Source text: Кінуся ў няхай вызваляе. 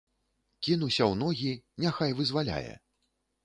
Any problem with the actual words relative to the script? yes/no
yes